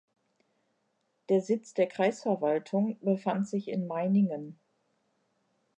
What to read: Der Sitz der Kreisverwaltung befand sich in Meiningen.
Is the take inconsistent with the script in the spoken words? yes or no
no